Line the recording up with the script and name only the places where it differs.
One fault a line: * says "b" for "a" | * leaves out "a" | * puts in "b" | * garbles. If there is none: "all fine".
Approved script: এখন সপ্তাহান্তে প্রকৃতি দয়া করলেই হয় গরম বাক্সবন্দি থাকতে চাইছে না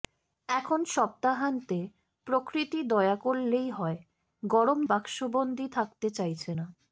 all fine